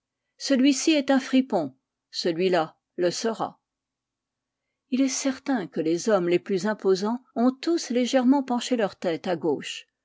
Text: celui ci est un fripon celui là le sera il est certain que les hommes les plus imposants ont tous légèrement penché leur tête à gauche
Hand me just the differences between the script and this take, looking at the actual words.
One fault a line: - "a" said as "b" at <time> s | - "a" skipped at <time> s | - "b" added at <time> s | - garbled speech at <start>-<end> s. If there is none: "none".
none